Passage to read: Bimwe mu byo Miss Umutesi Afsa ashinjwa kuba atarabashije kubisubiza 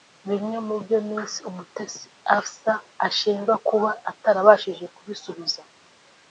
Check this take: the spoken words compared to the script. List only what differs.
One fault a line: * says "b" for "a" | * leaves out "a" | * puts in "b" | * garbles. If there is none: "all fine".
all fine